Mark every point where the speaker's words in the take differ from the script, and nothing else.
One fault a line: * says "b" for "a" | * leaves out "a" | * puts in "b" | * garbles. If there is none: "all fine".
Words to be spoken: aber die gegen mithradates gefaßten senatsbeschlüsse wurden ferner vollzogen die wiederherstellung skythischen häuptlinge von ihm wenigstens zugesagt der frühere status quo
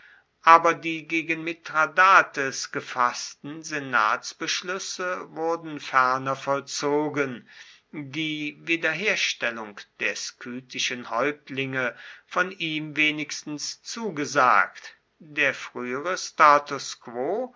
* puts in "der"